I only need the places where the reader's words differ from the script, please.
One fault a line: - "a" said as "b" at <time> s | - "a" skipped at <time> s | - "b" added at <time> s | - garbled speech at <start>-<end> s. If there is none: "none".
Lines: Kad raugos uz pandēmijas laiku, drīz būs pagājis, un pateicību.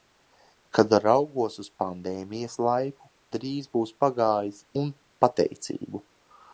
none